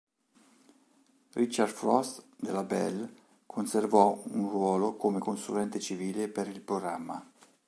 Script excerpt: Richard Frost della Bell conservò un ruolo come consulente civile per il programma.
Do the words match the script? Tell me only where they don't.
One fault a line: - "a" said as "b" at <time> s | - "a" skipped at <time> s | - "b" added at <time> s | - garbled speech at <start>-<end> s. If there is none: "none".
none